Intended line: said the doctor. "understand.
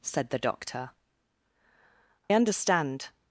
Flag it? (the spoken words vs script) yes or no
no